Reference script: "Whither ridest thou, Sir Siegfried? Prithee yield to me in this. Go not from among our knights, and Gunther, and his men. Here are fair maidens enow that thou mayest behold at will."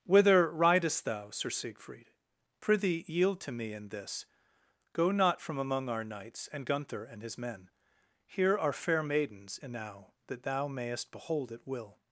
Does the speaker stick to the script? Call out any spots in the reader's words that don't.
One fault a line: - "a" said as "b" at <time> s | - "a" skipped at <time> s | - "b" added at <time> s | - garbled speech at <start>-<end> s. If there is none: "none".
none